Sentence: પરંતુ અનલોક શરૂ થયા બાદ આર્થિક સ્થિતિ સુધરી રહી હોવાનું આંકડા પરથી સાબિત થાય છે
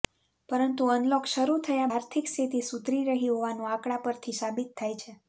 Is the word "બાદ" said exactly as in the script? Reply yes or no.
no